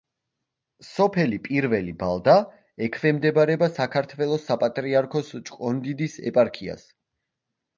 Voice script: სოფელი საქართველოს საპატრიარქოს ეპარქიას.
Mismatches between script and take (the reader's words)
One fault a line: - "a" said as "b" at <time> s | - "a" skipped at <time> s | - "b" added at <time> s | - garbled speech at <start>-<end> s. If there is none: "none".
- "პირველი ბალდა ექვემდებარება" added at 1.5 s
- "ჭყონდიდის" added at 5.5 s